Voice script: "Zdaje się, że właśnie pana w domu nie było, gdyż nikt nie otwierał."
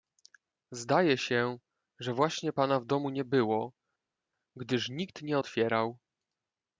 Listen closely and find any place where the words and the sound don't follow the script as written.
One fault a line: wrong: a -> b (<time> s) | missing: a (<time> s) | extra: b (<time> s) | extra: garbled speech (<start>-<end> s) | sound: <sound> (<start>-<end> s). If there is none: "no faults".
no faults